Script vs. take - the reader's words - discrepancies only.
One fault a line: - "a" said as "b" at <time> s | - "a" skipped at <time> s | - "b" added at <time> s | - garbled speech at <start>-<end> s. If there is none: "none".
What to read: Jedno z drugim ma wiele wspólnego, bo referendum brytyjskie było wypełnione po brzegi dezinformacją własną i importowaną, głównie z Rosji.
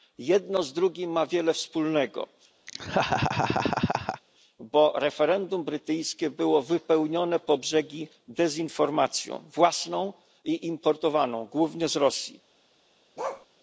none